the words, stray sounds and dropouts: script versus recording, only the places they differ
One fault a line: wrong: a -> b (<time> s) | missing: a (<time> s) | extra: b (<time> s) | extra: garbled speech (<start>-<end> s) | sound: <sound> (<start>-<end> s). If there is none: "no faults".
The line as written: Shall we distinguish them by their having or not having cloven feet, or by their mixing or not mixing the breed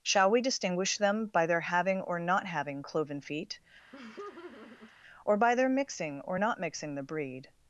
sound: laugh (3.9-4.9 s)